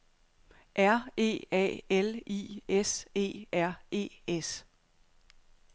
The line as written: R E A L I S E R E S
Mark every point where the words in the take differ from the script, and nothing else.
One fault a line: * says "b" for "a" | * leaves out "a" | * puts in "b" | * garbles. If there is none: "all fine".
all fine